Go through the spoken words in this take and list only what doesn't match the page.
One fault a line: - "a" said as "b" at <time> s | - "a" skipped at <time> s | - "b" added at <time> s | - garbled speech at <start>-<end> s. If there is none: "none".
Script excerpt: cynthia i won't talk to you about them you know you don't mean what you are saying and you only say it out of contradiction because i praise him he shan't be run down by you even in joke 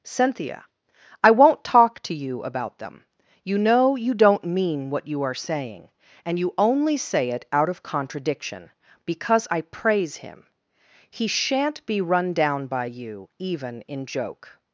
none